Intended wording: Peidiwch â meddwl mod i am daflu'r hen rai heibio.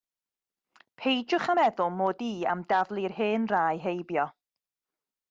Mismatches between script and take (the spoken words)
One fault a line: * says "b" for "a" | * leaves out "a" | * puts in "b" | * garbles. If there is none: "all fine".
all fine